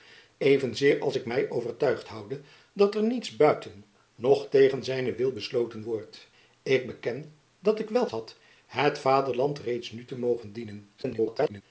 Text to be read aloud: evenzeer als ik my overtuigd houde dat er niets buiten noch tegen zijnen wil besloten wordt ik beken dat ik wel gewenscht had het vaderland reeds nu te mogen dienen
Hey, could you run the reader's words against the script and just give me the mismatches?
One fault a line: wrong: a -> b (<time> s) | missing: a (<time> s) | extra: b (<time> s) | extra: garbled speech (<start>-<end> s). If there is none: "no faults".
missing: gewenscht (8.1 s)
extra: garbled speech (11.0-11.6 s)